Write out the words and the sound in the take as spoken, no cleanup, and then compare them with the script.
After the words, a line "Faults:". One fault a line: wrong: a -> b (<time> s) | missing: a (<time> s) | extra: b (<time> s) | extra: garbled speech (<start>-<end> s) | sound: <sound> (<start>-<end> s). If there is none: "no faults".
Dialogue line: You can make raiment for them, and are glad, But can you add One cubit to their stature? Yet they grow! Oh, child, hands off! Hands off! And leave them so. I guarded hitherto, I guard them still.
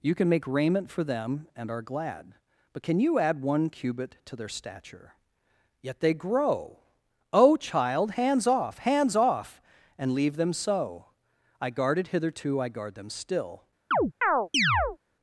You can make raiment for them, and are glad, But can you add One cubit to their stature? Yet they grow! Oh, child, hands off! Hands off! And leave them so. I guarded hitherto, I guard them still.
Faults:
sound: chirp (13.9-15.0 s)